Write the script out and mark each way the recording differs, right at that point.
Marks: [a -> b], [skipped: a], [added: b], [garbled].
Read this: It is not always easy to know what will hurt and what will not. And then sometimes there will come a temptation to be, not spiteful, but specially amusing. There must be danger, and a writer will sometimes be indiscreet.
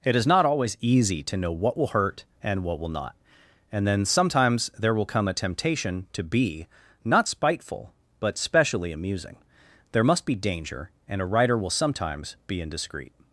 It is not always easy to know what will hurt and what will not. And then sometimes there will come a temptation to be, not spiteful, but specially amusing. There must be danger, and a writer will sometimes be indiscreet.